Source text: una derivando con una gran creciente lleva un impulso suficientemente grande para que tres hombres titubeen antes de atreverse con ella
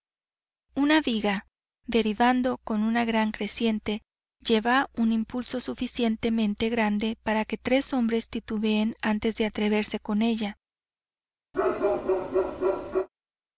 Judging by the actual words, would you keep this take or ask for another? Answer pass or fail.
fail